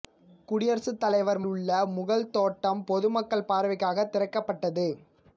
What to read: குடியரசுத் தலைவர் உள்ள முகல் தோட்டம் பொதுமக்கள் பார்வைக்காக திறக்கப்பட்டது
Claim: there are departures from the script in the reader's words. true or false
false